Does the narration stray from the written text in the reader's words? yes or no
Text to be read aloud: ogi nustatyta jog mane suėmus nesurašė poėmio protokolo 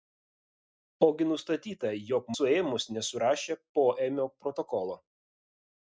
yes